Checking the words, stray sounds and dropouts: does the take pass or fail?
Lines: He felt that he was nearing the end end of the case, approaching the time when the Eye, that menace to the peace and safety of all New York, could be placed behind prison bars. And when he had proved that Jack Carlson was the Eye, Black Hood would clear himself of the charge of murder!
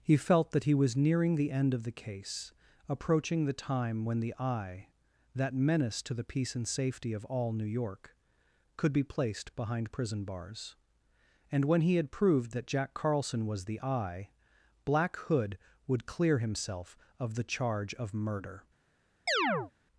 fail